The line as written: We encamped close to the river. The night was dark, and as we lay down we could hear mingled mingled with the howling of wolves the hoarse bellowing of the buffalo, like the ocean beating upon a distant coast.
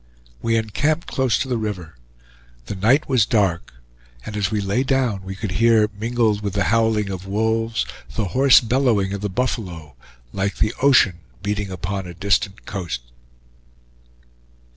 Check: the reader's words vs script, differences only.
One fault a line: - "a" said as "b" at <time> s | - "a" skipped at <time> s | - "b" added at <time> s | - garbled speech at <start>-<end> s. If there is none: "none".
- "mingled" skipped at 6.4 s